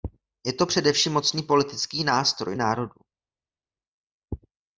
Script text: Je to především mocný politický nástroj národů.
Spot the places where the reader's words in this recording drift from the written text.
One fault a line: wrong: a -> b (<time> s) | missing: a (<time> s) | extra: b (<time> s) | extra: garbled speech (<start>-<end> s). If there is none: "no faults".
no faults